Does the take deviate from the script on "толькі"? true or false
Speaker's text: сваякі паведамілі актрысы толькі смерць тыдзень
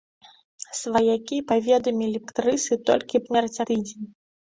false